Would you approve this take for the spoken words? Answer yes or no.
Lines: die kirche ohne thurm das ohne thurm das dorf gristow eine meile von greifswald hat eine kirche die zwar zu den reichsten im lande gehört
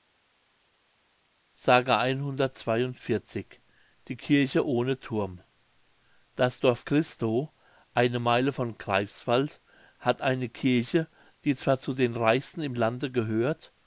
no